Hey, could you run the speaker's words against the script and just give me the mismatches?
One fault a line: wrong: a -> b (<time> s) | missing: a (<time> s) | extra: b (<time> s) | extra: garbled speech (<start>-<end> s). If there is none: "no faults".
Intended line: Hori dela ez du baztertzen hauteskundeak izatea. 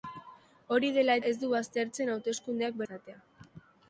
no faults